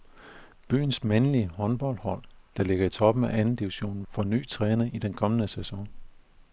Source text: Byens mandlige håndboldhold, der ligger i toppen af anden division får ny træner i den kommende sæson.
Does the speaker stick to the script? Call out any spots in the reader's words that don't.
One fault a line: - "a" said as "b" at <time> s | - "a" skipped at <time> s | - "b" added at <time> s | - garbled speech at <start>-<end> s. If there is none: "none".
none